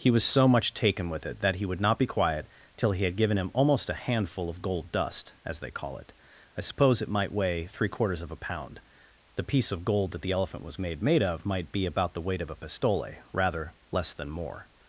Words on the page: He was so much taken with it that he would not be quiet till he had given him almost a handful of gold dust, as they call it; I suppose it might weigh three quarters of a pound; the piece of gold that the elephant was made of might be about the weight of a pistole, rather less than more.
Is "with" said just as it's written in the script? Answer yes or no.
yes